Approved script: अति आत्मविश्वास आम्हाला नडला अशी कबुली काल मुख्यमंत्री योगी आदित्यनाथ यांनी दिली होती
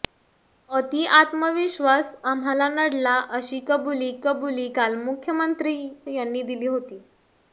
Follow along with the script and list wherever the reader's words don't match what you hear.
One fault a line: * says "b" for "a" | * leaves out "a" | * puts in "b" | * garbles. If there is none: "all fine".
* puts in "कबुली"
* leaves out "योगी आदित्यनाथ"